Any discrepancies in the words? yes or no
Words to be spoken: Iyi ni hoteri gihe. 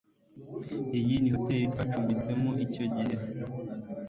yes